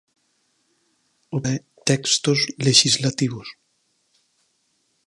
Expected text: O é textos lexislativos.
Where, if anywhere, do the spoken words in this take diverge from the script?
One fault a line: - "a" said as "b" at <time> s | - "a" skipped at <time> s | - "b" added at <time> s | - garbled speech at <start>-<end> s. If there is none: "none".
none